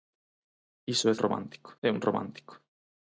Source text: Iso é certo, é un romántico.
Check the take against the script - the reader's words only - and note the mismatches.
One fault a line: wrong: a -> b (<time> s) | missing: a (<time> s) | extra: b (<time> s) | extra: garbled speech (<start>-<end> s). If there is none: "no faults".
wrong: certo -> romántico (1.2 s)